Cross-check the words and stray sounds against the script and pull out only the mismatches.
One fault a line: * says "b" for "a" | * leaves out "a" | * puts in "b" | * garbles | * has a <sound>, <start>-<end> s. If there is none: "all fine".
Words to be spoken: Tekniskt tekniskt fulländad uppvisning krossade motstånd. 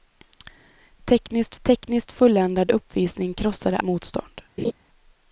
* has a laugh, 4.6-4.7 s